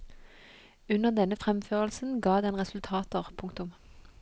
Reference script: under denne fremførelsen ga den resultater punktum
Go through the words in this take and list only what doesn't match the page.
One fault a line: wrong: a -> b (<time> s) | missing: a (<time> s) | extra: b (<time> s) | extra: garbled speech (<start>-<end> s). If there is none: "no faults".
no faults